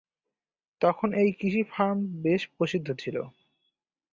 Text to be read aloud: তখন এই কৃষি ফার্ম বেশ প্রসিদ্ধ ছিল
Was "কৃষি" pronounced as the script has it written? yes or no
yes